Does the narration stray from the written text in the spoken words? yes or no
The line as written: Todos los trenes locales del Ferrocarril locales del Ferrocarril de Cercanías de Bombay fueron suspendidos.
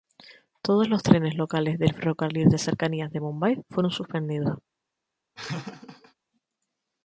yes